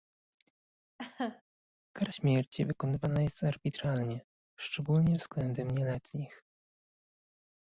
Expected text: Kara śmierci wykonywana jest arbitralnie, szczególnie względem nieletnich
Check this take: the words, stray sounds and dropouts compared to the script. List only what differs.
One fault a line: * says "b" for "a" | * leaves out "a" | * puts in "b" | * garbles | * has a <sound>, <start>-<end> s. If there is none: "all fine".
* has a laugh, 1.0-1.4 s